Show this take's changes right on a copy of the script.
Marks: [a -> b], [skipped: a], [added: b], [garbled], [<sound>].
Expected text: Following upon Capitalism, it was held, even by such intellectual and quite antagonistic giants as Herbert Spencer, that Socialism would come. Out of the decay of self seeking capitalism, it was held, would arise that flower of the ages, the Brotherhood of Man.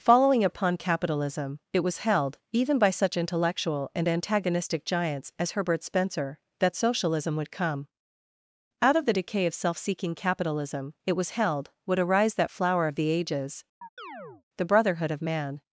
Following upon Capitalism, it was held, even by such intellectual and [skipped: quite] antagonistic giants as Herbert Spencer, that Socialism would come. Out of the decay of self seeking capitalism, it was held, would arise that flower of the ages, [chirp] the Brotherhood of Man.